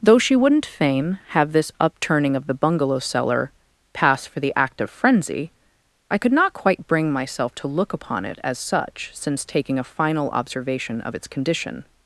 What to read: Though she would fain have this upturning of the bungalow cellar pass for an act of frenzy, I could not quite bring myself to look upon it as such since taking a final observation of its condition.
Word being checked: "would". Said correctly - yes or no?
no